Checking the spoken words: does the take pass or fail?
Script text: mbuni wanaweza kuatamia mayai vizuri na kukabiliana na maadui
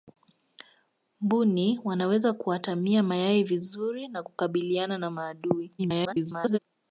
fail